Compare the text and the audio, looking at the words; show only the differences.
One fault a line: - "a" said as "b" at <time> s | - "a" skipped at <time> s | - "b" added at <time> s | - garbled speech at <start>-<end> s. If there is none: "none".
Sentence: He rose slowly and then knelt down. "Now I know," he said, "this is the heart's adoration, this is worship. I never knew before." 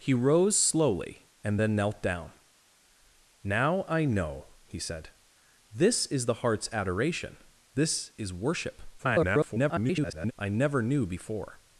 - garbled speech at 9.0-10.3 s